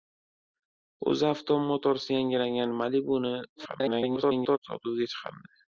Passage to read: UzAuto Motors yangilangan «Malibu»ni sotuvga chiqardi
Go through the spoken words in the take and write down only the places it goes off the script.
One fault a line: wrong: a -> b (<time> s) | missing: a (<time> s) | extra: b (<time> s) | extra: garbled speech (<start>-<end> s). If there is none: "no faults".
extra: garbled speech (3.6-4.6 s)